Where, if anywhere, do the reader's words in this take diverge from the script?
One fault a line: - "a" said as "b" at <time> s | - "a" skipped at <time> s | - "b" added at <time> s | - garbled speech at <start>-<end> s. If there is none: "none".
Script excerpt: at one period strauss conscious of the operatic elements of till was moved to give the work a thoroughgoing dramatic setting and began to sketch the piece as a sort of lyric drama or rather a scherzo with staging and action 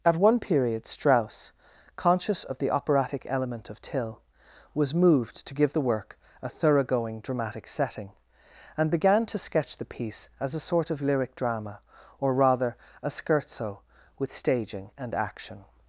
- "elements" said as "element" at 3.3 s